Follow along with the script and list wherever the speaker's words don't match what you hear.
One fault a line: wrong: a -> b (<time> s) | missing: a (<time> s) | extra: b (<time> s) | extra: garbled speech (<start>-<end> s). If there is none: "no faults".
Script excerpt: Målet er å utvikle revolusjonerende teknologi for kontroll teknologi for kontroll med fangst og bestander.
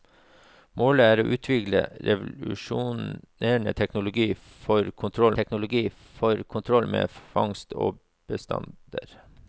no faults